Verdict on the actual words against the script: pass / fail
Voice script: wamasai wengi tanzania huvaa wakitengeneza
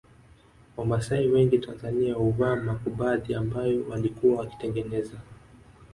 fail